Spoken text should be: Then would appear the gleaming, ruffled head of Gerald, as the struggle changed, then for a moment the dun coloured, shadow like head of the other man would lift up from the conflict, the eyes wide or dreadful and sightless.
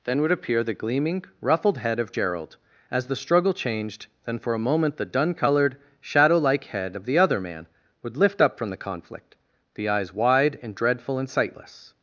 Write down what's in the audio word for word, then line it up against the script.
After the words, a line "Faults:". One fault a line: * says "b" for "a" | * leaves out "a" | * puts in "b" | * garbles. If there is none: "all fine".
Then would appear the gleaming, ruffled head of Gerald, as the struggle changed, then for a moment the dun coloured, shadow like head of the other man would lift up from the conflict, the eyes wide and dreadful and sightless.
Faults:
* says "and" for "or"